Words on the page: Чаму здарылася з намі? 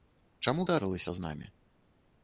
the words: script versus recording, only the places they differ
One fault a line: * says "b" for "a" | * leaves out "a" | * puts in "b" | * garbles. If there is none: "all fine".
all fine